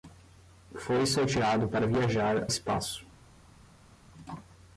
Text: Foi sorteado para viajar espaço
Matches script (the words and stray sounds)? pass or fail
pass